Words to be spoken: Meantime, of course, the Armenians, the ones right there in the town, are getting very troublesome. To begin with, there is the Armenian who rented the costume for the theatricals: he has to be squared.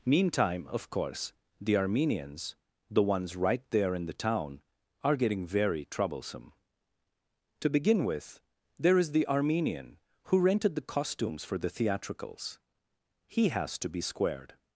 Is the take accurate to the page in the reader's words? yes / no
no